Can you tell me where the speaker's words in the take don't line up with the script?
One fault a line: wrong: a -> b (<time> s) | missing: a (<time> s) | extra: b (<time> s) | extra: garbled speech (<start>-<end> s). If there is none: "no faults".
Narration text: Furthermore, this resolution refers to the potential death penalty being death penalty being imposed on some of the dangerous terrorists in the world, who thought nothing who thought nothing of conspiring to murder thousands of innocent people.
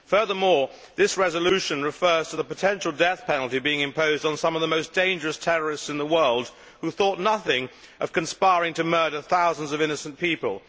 missing: death penalty being (3.8 s)
extra: most (4.7 s)
missing: who thought nothing (7.7 s)